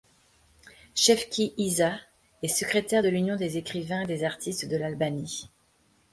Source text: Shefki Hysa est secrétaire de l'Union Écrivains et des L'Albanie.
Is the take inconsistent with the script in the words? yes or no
yes